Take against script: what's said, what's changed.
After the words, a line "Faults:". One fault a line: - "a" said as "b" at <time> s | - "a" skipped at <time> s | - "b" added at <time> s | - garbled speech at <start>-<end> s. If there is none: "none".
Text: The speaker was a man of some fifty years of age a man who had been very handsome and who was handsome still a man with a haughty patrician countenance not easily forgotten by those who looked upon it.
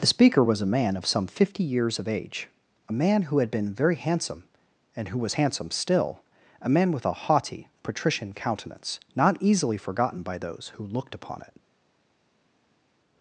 The speaker was a man of some fifty years of age a man who had been very handsome and who was handsome still a man with a haughty patrician countenance not easily forgotten by those who looked upon it.
Faults:
none